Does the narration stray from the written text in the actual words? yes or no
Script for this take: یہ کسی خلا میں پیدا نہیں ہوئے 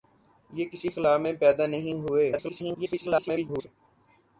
yes